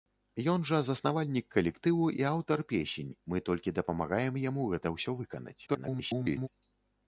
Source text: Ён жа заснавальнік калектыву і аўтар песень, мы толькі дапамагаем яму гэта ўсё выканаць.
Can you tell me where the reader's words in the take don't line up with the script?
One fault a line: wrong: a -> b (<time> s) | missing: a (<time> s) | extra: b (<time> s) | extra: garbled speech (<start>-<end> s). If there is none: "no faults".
extra: garbled speech (5.7-6.5 s)